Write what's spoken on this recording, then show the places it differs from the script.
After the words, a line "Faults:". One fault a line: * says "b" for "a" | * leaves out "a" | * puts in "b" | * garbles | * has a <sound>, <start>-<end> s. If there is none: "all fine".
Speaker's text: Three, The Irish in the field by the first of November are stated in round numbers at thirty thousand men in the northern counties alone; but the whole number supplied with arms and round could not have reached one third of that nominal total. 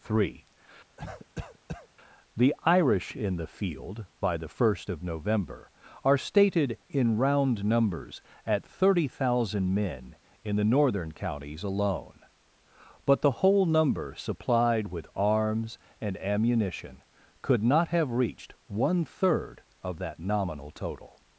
Three, The Irish in the field by the first of November are stated in round numbers at thirty thousand men in the northern counties alone; but the whole number supplied with arms and ammunition could not have reached one third of that nominal total.
Faults:
* has a cough, 1.0-1.9 s
* says "ammunition" for "round"